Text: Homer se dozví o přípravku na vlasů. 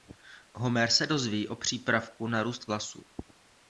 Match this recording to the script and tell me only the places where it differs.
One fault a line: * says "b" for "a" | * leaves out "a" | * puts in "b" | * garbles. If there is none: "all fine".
* puts in "růst"